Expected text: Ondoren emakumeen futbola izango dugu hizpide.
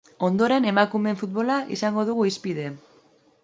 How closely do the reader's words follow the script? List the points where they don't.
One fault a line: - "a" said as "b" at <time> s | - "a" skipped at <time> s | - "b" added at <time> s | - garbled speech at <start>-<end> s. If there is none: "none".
none